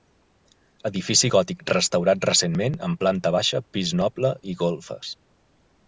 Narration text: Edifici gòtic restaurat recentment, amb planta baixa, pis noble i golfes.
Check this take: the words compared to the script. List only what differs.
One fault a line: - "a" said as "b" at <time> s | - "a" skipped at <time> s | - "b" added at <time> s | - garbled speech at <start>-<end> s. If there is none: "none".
none